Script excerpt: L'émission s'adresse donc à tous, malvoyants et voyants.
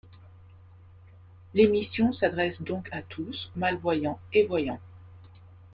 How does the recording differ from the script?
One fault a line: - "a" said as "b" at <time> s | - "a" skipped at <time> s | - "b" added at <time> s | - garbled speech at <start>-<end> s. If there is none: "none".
none